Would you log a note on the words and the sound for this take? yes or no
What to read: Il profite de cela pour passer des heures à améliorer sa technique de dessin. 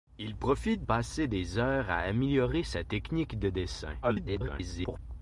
yes